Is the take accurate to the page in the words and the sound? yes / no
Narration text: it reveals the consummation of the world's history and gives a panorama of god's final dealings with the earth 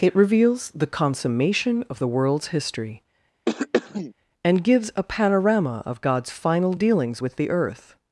no